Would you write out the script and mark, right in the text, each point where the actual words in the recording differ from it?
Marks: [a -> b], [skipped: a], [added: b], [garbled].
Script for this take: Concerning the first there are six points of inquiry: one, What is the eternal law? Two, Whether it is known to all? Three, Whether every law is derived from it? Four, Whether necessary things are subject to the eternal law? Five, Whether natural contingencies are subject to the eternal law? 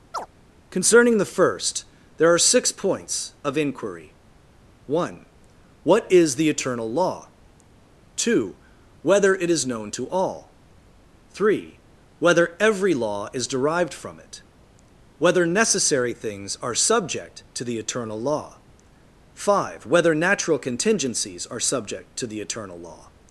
Concerning the first there are six points of inquiry: one, What is the eternal law? Two, Whether it is known to all? Three, Whether every law is derived from it? [skipped: Four,] Whether necessary things are subject to the eternal law? Five, Whether natural contingencies are subject to the eternal law?